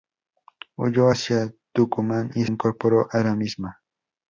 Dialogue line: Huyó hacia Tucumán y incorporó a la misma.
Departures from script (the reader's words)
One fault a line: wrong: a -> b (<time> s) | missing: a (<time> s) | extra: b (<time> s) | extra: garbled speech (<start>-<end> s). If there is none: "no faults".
no faults